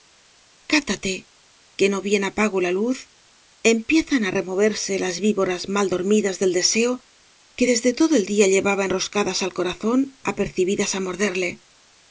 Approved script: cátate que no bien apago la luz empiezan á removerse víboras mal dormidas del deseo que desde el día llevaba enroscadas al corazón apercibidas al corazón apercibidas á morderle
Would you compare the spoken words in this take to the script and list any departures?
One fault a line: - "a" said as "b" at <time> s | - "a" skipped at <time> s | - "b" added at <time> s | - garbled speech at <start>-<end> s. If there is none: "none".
- "las" added at 5.0 s
- "todo" added at 8.0 s
- "al corazón apercibidas" skipped at 10.9 s